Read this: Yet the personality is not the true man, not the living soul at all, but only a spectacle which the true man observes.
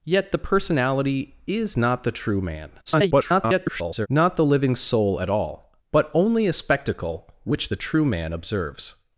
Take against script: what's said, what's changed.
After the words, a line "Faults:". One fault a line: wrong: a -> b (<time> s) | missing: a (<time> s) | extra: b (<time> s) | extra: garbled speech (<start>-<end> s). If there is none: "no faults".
Yet the personality is not the true man, [garbled] not the living soul at all, but only a spectacle which the true man observes.
Faults:
extra: garbled speech (2.9-4.1 s)